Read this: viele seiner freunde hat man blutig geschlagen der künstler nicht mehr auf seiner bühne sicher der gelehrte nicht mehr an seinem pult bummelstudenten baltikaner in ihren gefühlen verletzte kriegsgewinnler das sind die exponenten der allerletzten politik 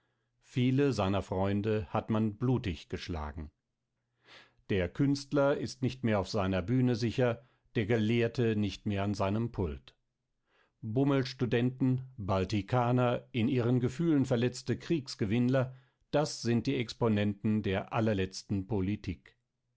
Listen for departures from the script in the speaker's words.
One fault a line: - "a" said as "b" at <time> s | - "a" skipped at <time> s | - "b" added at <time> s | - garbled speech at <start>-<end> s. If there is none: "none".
- "ist" added at 5.6 s